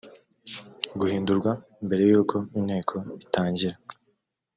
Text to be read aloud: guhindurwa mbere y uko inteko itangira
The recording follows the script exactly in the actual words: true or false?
true